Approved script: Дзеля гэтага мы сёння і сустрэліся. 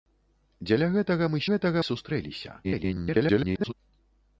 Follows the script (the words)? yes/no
no